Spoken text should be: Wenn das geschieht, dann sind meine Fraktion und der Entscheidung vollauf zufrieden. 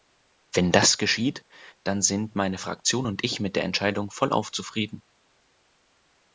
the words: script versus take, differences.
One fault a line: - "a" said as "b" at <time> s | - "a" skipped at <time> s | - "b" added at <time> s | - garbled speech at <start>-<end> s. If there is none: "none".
- "ich mit" added at 3.3 s